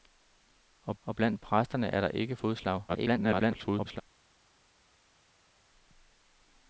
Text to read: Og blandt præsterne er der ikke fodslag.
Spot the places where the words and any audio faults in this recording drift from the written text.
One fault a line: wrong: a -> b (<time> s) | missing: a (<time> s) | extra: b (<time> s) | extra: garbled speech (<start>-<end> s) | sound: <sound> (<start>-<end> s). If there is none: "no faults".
extra: og (1.0 s)
extra: garbled speech (2.9-4.0 s)